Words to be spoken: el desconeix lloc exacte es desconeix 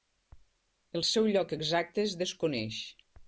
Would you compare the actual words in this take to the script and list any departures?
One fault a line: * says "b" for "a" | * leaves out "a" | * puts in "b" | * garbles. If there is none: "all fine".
* says "seu" for "desconeix"